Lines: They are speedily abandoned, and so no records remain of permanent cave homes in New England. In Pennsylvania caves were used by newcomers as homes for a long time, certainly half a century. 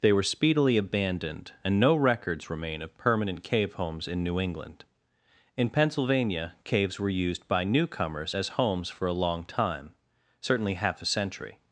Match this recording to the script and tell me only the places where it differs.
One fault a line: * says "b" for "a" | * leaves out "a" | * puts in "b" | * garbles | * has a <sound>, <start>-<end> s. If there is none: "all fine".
* says "were" for "are"
* leaves out "so"